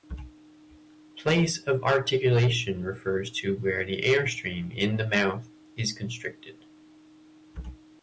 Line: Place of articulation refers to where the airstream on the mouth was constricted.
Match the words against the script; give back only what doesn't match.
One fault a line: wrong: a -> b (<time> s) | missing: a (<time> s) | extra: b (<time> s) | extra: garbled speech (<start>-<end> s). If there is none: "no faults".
wrong: on -> in (4.8 s)
wrong: was -> is (5.8 s)